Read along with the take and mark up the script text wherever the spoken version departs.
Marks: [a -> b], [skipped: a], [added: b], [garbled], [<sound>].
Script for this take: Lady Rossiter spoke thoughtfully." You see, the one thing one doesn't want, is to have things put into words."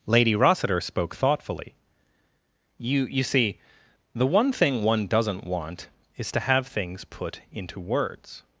Lady Rossiter spoke thoughtfully." You [added: You] see, the one thing one doesn't want, is to have things put into words."